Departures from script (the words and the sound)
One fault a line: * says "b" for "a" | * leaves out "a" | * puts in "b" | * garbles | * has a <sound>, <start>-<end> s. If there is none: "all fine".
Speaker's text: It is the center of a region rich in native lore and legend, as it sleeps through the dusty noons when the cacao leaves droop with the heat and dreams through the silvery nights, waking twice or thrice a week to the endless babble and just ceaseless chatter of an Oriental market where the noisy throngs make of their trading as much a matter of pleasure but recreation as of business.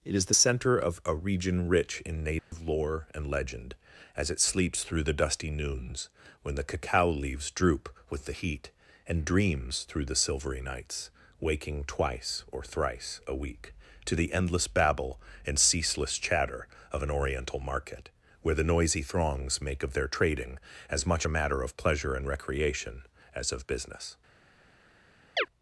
* has a dropout, 2.4-2.5 s
* leaves out "just"
* says "and" for "but"
* has a chirp, 25.4-25.5 s